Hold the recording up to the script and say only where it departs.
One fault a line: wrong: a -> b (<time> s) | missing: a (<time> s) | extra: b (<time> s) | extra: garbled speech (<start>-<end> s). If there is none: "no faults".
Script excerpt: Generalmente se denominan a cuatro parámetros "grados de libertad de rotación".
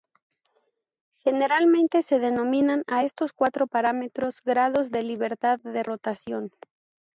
extra: estos (3.0 s)